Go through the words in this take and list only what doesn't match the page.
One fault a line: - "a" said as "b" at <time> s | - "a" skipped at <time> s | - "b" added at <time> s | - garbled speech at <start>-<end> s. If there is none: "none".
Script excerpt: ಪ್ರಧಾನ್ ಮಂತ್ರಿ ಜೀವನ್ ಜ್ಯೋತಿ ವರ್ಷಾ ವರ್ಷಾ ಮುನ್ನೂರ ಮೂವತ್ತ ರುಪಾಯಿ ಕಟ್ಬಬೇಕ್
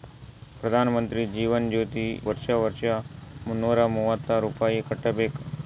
none